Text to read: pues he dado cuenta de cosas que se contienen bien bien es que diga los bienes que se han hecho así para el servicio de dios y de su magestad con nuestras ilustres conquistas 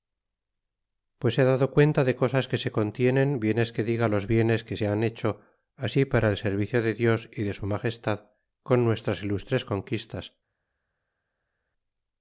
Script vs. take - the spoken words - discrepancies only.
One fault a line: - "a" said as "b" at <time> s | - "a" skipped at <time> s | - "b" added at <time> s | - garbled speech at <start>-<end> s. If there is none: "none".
- "bien" skipped at 3.6 s